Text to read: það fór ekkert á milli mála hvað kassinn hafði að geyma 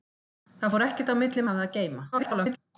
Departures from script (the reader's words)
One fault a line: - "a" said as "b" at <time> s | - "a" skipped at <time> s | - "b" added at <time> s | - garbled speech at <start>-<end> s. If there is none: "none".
- "mála hvað kassinn" skipped at 1.4 s
- garbled speech at 2.1-2.6 s